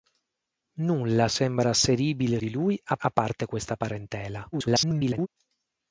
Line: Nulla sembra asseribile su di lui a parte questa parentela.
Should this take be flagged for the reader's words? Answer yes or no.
yes